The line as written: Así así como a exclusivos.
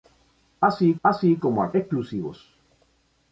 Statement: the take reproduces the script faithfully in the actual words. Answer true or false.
true